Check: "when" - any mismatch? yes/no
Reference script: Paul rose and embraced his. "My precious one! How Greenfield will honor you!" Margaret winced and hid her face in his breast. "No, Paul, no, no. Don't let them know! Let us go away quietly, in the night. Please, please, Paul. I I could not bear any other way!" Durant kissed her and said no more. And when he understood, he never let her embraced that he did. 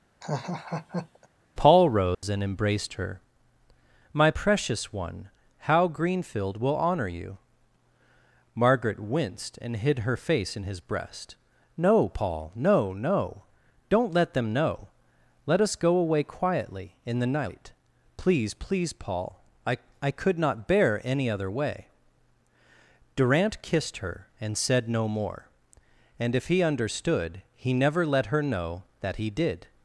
yes